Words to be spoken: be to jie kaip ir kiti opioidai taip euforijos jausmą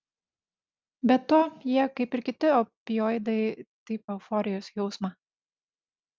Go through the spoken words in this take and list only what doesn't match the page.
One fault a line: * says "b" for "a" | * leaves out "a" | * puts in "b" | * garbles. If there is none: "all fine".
all fine